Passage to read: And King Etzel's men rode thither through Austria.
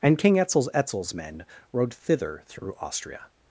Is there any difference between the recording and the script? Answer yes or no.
yes